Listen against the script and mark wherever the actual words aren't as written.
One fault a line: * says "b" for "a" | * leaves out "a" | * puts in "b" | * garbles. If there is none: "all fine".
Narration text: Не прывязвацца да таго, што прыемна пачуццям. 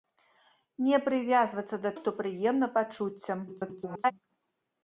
* leaves out "таго"
* garbles